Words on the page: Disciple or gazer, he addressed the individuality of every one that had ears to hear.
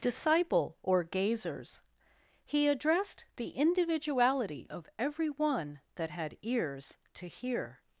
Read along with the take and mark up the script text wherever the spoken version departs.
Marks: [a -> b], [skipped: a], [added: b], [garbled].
Disciple or [gazer, -> gazers] he addressed the individuality of every one that had ears to hear.